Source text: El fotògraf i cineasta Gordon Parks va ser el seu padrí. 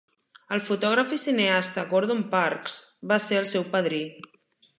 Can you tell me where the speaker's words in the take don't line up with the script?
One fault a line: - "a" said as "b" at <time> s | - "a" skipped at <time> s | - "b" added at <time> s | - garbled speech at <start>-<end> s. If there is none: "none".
none